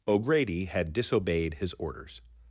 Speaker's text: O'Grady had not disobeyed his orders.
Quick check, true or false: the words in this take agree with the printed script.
false